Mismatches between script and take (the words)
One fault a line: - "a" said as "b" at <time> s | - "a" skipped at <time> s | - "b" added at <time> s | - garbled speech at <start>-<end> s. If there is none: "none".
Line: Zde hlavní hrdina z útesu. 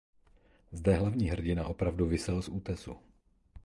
- "opravdu visel" added at 1.6 s